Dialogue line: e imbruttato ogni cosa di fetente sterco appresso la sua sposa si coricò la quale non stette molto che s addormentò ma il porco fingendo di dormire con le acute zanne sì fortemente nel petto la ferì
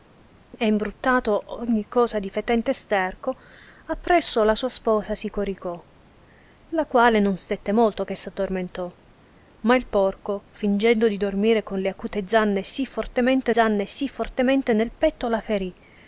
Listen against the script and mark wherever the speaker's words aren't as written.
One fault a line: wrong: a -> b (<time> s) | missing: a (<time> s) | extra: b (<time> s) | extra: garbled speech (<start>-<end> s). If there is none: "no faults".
extra: zanne sì fortemente (13.5 s)